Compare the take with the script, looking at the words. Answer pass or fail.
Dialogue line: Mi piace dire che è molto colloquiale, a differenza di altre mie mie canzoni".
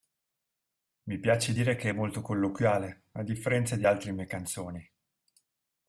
fail